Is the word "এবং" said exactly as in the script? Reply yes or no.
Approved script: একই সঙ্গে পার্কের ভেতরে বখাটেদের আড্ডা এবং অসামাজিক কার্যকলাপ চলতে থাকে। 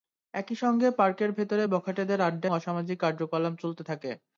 no